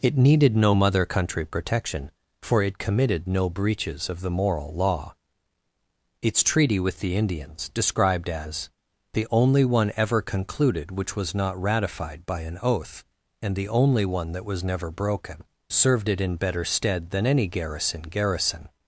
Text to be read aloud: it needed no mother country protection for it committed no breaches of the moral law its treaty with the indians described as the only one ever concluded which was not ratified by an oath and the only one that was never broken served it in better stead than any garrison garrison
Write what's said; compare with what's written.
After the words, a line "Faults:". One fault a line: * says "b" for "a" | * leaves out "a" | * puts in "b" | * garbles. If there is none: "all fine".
it needed no mother country protection for it committed no breaches of the moral law its treaty with the indians described as the only one ever concluded which was not ratified by an oath and the only one that was never broken served it in better stead than any garrison garrison
Faults:
all fine